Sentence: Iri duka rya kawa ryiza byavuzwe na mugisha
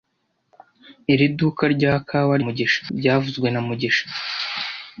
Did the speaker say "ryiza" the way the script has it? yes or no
no